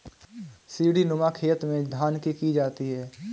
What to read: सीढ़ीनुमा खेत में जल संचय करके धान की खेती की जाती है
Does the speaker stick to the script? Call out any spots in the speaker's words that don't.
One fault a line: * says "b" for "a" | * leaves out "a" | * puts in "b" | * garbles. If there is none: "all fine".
* leaves out "जल संचय करके"
* leaves out "खेती"